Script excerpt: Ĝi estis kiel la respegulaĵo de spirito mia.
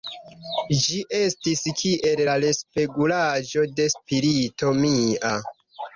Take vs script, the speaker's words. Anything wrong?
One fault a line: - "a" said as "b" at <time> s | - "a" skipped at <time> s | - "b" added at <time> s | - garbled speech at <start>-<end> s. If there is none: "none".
none